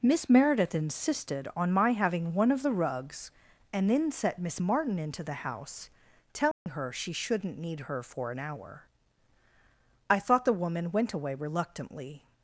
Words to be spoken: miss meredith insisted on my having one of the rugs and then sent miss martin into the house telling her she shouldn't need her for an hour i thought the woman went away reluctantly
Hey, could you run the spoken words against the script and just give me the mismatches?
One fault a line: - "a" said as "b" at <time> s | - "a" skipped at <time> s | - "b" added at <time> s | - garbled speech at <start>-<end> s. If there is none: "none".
- "sent" said as "set" at 4.1 s